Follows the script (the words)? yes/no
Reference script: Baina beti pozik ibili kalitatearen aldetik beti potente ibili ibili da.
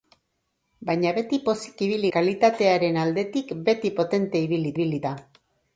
yes